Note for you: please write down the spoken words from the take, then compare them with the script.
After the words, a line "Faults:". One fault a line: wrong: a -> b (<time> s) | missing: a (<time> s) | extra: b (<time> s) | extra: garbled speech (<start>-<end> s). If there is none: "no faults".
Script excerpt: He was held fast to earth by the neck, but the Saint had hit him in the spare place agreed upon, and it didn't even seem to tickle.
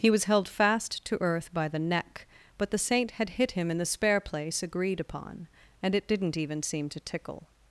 He was held fast to earth by the neck, but the Saint had hit him in the spare place agreed upon, and it didn't even seem to tickle.
Faults:
no faults